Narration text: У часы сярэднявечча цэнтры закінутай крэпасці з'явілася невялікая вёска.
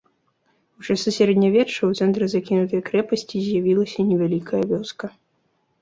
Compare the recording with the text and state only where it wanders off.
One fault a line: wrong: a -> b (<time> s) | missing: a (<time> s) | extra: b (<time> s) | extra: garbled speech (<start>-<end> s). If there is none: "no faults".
extra: ў (1.8 s)